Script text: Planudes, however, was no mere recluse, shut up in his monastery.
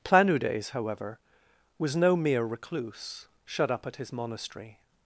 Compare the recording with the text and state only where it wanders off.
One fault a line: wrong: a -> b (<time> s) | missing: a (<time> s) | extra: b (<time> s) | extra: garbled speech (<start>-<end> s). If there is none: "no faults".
wrong: in -> at (3.9 s)